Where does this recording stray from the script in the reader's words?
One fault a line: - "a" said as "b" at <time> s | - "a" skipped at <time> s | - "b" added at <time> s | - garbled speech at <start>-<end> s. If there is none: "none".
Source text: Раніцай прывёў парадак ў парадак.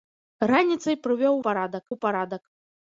none